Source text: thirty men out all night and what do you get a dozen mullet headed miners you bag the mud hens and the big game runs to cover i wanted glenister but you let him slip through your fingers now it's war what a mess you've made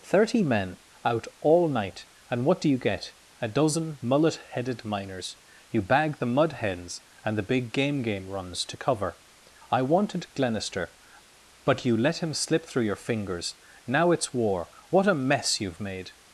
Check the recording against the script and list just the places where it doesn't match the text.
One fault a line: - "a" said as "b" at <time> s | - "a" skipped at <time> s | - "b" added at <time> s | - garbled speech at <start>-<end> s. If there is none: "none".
- "game" added at 8.0 s